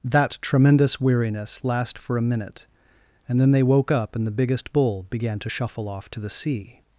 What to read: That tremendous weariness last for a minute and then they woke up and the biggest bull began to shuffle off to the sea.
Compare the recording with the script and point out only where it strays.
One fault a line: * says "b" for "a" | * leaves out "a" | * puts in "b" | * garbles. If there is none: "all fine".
all fine